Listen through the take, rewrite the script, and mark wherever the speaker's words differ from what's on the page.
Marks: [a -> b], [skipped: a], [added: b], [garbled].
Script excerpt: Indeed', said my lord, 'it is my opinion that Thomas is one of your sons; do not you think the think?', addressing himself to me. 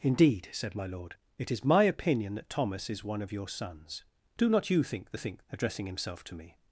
Indeed', said my lord, 'it is my opinion that Thomas is one of your sons; do not you think the think?', addressing himself to me.